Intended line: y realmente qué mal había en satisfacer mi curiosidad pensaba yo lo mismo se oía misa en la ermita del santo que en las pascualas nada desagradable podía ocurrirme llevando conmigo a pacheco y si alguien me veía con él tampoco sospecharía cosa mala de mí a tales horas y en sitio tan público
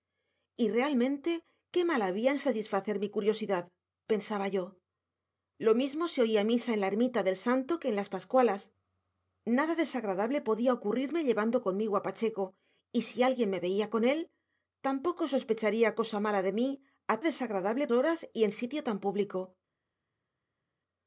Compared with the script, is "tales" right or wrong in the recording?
wrong